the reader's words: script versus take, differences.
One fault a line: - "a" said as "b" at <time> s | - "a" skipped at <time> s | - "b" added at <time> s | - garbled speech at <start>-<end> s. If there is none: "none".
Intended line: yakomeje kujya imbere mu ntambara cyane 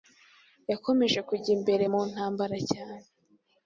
none